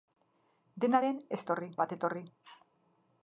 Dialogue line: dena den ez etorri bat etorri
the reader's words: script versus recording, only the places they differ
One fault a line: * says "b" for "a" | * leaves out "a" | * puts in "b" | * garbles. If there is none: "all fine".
all fine